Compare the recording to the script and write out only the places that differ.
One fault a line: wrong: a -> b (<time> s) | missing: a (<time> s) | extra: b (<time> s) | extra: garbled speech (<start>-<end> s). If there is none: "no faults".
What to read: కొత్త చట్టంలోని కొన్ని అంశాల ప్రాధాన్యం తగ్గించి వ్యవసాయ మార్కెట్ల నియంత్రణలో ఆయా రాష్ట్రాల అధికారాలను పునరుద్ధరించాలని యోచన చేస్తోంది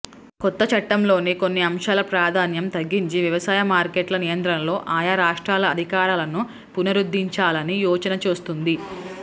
no faults